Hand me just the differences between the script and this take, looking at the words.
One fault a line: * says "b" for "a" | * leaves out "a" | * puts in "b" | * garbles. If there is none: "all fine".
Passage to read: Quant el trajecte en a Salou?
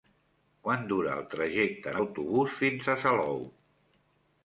* puts in "dura"
* puts in "autobús fins"